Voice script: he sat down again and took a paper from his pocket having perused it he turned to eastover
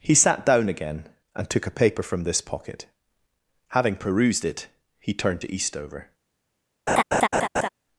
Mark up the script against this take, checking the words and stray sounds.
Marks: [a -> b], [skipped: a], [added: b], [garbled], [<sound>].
he sat down again and took a paper from [his -> this] pocket having perused it he turned to eastover [laugh]